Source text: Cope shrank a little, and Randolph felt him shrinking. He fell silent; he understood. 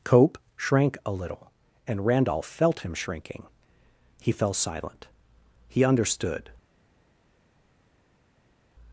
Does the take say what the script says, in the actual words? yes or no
yes